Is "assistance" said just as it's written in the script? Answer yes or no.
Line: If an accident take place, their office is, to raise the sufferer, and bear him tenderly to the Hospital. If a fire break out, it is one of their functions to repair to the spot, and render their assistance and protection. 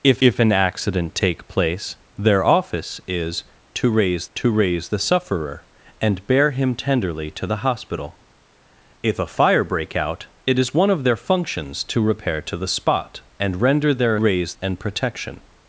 no